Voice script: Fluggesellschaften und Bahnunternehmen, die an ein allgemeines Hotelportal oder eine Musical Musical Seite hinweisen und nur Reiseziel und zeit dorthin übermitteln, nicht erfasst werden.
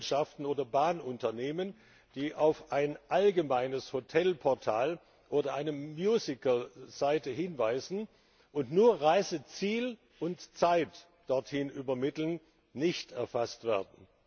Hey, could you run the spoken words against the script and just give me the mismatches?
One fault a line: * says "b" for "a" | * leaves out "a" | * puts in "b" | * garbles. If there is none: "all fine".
* says "oder" for "und"
* says "auf" for "an"
* leaves out "Musical"